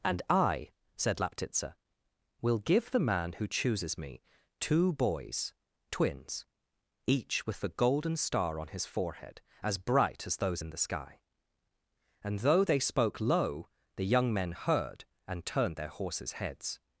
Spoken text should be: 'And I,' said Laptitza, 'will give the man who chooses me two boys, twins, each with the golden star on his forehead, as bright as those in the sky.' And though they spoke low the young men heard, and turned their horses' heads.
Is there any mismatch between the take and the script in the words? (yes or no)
no